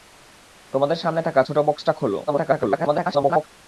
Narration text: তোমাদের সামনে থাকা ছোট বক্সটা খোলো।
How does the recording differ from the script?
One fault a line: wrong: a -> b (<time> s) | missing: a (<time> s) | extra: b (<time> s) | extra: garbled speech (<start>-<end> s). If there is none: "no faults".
extra: garbled speech (2.3-3.5 s)